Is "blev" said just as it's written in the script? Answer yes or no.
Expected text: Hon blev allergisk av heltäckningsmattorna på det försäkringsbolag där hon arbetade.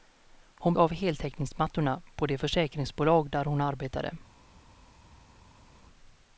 no